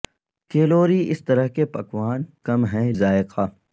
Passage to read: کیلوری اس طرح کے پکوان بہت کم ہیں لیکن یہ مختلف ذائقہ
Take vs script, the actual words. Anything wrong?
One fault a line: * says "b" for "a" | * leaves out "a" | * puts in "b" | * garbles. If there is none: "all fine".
* leaves out "بہت"
* leaves out "لیکن یہ مختلف"